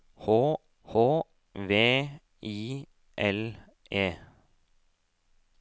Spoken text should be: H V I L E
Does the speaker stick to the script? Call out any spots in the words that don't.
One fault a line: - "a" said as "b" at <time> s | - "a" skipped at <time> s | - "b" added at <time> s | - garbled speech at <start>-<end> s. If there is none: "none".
- "h" added at 0.8 s